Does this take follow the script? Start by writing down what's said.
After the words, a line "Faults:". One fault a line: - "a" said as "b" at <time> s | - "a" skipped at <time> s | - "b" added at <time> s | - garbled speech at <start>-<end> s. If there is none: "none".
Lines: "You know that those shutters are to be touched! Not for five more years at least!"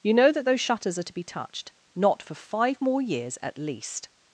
"You know that those shutters are to be touched! Not for five more years at least!"
Faults:
none